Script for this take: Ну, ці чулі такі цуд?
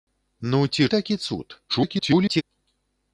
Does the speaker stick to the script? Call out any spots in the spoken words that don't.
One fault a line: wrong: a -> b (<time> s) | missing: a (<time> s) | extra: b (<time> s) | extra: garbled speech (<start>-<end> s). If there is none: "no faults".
missing: чулі (0.9 s)
extra: garbled speech (1.7-2.4 s)